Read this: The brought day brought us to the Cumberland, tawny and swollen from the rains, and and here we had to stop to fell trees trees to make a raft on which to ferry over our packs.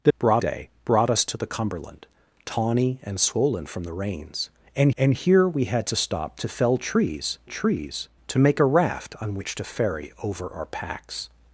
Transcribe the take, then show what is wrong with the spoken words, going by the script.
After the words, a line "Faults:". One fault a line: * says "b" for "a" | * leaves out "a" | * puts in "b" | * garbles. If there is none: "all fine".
The brought day brought us to the Cumberland, tawny and swollen from the rains, and and here we had to stop to fell trees trees to make a raft on which to ferry over our packs.
Faults:
all fine